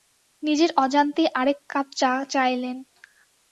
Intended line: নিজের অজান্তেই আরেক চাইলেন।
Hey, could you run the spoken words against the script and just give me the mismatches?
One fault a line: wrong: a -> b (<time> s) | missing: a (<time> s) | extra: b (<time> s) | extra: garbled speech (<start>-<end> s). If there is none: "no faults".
extra: কাপ চা (1.7 s)